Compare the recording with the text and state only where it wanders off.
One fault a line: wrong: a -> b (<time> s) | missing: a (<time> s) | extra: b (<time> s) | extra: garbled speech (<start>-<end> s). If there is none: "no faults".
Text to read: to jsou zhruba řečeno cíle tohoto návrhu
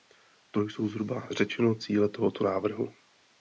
no faults